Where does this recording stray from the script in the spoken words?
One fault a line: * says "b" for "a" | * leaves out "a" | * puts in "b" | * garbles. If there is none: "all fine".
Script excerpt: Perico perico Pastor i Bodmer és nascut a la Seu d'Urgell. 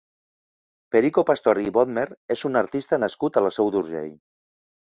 * leaves out "perico"
* puts in "un artista"